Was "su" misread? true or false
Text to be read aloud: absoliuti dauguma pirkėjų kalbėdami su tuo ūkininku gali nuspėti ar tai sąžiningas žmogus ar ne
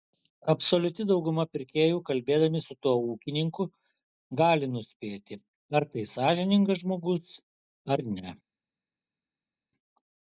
false